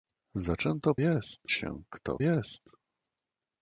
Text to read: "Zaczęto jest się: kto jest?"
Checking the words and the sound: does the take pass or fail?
pass